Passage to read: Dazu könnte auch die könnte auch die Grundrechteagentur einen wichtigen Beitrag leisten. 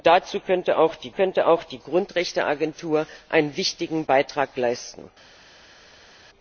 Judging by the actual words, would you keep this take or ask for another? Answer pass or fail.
pass